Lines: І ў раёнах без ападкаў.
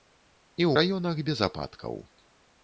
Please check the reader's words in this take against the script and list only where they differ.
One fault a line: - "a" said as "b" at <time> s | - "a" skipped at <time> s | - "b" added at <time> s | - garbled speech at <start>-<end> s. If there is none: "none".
none